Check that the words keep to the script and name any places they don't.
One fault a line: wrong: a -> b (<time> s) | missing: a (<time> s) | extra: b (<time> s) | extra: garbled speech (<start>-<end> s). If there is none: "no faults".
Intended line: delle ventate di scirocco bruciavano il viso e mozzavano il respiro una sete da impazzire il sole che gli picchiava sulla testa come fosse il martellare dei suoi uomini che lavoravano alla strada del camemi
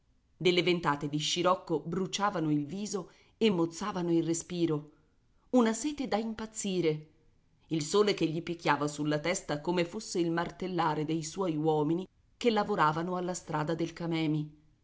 no faults